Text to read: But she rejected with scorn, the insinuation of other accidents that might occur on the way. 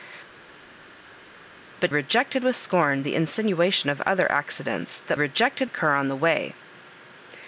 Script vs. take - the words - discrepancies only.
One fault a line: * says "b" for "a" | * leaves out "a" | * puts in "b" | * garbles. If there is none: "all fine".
* leaves out "she"
* says "rejected" for "might"